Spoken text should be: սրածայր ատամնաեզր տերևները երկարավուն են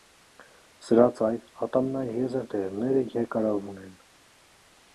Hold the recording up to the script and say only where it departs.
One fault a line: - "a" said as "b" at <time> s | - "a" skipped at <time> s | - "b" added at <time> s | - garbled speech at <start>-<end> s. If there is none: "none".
none